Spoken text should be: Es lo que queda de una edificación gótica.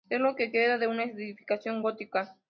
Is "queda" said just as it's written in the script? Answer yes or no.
yes